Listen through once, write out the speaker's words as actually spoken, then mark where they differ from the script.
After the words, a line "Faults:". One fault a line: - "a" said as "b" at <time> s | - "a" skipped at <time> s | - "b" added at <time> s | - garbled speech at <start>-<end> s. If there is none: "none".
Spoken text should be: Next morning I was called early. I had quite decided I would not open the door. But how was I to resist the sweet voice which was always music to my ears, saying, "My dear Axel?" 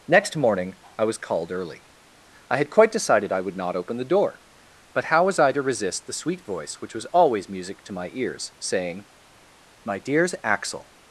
Next morning I was called early. I had quite decided I would not open the door. But how was I to resist the sweet voice which was always music to my ears, saying, "My dears Axel?"
Faults:
- "dear" said as "dears" at 10.0 s